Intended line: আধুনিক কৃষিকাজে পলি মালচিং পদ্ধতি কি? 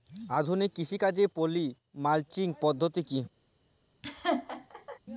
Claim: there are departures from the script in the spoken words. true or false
false